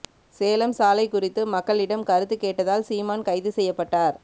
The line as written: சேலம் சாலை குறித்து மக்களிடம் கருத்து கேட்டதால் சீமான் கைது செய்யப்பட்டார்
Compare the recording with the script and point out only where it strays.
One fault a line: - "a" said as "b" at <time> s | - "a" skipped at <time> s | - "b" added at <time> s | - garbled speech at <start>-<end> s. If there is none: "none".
none